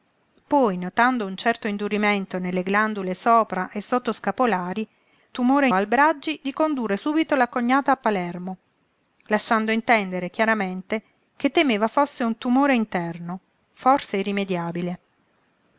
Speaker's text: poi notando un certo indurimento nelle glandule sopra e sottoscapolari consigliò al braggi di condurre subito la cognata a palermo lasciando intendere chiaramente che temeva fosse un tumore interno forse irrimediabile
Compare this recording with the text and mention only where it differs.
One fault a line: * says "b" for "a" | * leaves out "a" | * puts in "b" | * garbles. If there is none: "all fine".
* says "tumore" for "consigliò"